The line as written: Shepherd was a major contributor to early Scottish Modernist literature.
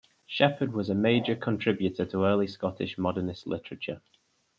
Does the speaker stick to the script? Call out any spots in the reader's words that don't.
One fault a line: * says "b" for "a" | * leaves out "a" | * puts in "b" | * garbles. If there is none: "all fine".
all fine